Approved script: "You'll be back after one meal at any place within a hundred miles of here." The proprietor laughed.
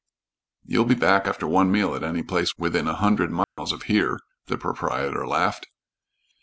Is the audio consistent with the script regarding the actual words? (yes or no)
yes